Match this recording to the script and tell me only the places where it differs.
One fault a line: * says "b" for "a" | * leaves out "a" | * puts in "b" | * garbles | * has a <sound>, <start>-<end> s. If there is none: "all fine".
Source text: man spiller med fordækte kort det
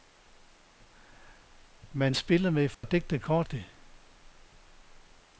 * has a dropout, 2.7-2.8 s